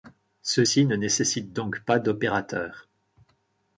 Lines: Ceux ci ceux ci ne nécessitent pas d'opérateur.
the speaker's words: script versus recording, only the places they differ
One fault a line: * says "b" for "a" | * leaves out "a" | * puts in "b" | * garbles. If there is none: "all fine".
* leaves out "ceux ci"
* puts in "donc"